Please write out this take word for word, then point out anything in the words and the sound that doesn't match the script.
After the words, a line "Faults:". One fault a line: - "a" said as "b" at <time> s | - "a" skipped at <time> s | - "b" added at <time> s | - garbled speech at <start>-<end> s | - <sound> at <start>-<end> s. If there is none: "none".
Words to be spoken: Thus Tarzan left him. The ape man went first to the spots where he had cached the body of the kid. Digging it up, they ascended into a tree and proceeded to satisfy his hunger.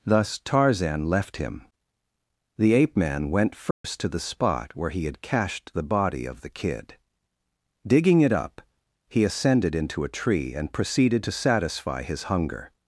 Thus Tarzan left him. The ape man went first to the spot where he had cached the body of the kid. Digging it up, he ascended into a tree and proceeded to satisfy his hunger.
Faults:
- dropout at 3.7-3.8 s
- "spots" said as "spot" at 4.2 s
- "they" said as "he" at 9.1 s